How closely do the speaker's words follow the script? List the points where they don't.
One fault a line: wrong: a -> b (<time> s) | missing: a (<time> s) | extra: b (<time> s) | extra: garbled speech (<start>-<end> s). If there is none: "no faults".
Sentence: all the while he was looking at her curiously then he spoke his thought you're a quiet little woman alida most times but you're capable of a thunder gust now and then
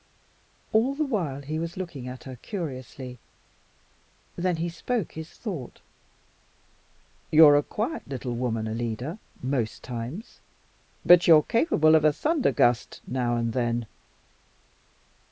no faults